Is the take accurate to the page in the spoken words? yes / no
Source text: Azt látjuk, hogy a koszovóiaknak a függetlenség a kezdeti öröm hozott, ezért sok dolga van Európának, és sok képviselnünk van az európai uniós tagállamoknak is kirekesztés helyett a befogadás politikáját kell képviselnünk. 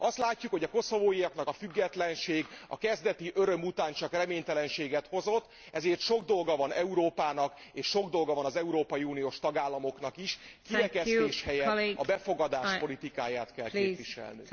no